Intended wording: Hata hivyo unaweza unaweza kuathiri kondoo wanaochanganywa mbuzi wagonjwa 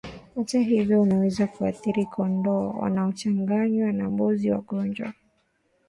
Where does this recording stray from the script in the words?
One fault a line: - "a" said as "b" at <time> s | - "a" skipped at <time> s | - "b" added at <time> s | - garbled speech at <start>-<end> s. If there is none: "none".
- "unaweza" skipped at 1.5 s
- "na" added at 3.9 s